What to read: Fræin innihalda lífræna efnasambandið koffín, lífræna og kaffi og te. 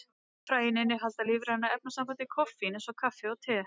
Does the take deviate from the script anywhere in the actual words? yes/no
yes